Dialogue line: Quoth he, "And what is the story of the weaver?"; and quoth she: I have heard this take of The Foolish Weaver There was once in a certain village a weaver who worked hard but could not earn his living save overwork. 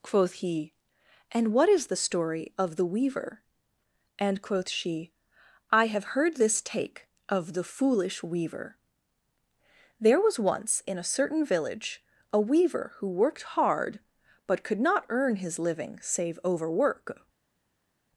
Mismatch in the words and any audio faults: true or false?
false